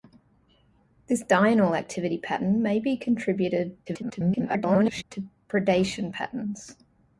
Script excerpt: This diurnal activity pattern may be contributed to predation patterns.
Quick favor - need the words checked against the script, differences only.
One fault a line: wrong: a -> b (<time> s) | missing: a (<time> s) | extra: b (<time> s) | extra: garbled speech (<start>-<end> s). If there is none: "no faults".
extra: garbled speech (3.9-5.0 s)